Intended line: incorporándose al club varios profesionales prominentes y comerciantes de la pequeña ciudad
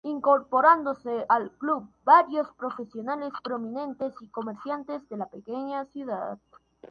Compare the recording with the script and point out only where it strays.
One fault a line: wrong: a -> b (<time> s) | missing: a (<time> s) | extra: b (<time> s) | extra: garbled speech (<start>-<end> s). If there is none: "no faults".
no faults